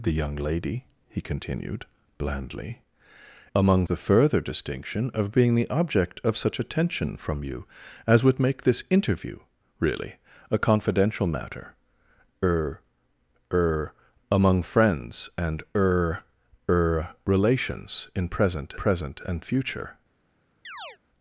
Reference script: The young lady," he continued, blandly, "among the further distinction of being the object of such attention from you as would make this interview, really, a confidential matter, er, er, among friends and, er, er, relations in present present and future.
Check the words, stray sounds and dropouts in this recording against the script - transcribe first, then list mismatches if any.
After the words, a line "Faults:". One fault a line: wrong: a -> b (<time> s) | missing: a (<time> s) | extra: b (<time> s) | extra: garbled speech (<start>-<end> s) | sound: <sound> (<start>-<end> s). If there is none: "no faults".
The young lady," he continued, blandly, "among the further distinction of being the object of such attention from you as would make this interview, really, a confidential matter, er, er, among friends and, er, er, relations in present present and future.
Faults:
sound: chirp (20.6-21.0 s)